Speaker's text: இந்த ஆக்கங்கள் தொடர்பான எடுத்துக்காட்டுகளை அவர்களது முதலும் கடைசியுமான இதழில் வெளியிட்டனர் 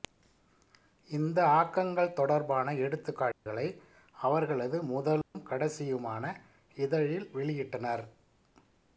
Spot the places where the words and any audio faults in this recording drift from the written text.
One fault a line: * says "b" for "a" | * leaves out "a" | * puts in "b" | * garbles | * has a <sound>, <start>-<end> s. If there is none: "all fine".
* has a dropout, 3.3-3.5 s
* has a dropout, 5.2-5.3 s